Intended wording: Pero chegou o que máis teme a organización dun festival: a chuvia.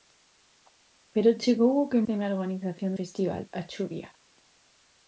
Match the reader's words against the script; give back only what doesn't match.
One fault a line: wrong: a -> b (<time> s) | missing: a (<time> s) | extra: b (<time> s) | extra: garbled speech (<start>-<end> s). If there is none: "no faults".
missing: máis (2.0 s)
missing: dun (2.9 s)